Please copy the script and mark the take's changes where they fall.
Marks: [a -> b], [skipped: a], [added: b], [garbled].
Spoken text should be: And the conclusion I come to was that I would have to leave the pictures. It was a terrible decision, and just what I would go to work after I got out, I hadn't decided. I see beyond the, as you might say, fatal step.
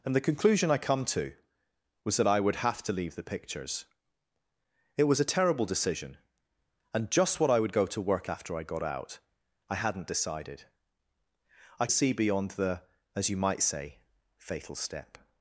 And the conclusion I come to was that I would have to leave the pictures. It was a terrible decision, and just what I would go to work after I got out, I hadn't decided. I see beyond the, as you might say, fatal step.